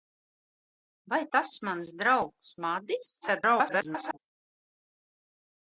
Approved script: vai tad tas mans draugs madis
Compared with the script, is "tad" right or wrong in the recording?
wrong